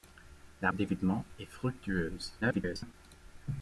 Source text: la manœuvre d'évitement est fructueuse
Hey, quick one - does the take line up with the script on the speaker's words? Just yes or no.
no